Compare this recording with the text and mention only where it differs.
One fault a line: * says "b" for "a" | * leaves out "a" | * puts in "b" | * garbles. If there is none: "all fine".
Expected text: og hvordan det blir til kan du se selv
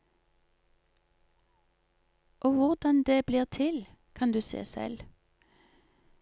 all fine